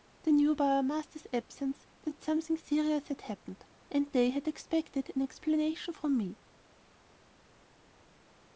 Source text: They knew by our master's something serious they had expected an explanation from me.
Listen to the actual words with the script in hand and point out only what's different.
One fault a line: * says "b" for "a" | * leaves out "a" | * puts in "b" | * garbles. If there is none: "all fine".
* puts in "absence that"
* puts in "had happened and"